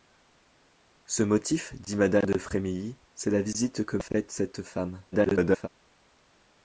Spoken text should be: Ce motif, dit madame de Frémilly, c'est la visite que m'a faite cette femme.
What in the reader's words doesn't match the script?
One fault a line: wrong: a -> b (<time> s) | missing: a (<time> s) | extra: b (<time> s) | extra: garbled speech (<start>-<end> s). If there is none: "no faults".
missing: m'a (4.0 s)
extra: garbled speech (5.1-5.7 s)